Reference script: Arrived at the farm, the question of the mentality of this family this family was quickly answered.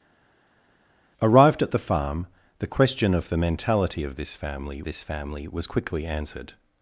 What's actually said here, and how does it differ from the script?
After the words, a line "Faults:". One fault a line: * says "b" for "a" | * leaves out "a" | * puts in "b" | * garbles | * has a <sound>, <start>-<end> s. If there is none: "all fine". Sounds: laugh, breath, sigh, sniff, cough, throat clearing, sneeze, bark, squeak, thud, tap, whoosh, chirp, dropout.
Arrived at the farm, the question of the mentality of this family this family was quickly answered.
Faults:
all fine